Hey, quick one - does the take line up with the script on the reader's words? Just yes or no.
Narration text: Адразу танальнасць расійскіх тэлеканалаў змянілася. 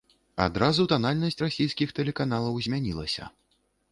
yes